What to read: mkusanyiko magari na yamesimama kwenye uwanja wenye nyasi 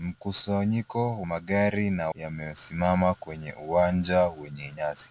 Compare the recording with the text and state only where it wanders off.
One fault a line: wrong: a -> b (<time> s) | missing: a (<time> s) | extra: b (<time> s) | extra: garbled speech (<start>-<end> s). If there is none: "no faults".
no faults